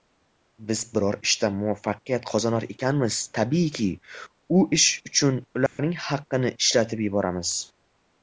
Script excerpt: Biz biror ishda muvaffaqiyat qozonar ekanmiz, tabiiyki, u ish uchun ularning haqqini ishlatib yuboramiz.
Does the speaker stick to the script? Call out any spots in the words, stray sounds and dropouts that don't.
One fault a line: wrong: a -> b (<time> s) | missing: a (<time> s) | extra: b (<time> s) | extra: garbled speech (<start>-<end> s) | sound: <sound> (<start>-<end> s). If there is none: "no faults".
sound: dropout (5.7-5.8 s)